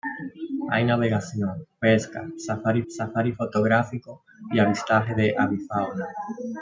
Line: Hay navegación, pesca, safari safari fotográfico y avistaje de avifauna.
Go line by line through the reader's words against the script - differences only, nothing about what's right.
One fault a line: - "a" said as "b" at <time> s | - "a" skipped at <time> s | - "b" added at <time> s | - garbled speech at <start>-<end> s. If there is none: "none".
none